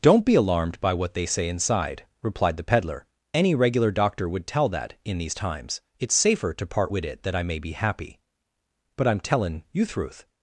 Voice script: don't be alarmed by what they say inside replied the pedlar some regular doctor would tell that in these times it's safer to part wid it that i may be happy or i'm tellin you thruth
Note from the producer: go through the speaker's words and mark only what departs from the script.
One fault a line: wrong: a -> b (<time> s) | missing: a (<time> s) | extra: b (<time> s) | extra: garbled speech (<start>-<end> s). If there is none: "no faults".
wrong: some -> any (3.4 s)
wrong: or -> but (8.9 s)